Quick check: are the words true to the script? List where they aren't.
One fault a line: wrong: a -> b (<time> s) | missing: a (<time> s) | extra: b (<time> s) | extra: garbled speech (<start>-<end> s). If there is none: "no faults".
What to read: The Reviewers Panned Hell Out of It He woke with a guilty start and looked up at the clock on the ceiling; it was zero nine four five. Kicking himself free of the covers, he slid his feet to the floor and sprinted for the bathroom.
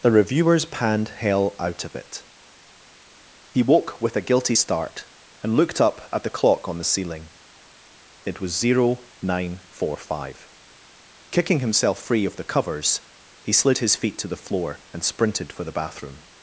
no faults